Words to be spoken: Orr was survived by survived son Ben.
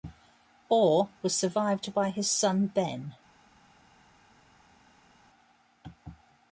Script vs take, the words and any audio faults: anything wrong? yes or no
yes